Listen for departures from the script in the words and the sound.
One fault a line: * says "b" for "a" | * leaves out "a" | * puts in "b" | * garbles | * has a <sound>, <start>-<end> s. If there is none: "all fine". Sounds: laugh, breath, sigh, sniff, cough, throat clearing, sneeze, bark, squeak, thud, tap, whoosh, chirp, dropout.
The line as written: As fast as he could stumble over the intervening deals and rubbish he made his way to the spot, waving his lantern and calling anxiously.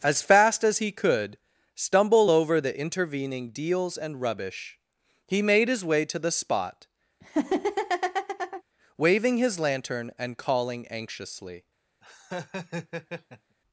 * has a laugh, 7.2-8.6 s
* has a laugh, 12.0-13.6 s